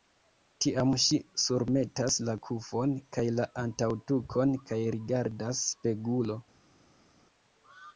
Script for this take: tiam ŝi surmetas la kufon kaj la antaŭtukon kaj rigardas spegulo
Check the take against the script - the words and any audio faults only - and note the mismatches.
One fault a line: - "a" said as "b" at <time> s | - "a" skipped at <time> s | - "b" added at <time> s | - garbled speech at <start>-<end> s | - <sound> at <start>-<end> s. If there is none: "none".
none